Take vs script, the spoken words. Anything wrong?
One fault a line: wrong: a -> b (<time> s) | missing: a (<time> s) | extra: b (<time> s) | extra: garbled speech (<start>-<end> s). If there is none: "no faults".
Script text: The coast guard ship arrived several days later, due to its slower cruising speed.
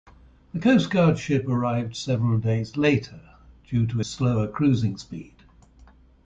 missing: its (4.0 s)